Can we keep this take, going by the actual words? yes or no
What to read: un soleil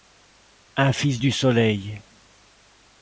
no